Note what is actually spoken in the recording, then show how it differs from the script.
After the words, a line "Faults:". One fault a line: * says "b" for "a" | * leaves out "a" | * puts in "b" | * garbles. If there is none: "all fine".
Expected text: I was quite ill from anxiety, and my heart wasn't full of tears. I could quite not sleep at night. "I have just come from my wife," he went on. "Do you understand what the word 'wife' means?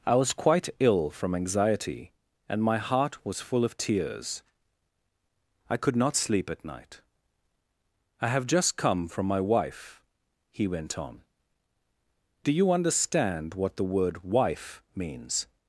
I was quite ill from anxiety, and my heart was full of tears. I could not sleep at night. "I have just come from my wife," he went on. "Do you understand what the word 'wife' means?
Faults:
* says "was" for "wasn't"
* leaves out "quite"